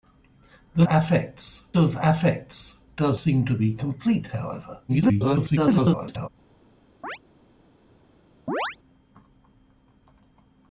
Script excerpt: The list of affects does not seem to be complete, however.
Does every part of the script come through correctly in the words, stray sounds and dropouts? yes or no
no